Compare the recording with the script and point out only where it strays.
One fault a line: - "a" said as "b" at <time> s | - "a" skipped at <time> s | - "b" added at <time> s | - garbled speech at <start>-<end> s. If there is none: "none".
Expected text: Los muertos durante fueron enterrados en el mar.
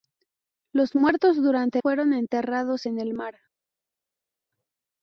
none